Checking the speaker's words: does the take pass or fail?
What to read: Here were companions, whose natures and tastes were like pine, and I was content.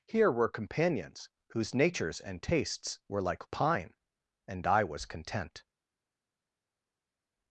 pass